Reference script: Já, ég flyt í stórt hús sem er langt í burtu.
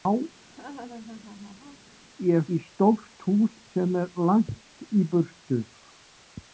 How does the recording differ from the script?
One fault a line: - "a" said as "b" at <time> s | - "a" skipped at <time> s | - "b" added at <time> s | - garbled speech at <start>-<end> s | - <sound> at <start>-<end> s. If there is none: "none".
- laugh at 0.4-1.9 s
- "flyt" skipped at 2.4 s